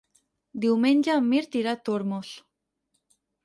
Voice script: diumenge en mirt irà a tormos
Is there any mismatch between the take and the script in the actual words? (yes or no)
no